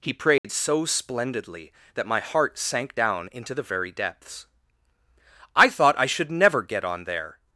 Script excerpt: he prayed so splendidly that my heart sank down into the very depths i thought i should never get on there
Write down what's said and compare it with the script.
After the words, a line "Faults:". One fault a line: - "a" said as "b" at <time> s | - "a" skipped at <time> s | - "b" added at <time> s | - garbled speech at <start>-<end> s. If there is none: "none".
he prayed so splendidly that my heart sank down into the very depths i thought i should never get on there
Faults:
none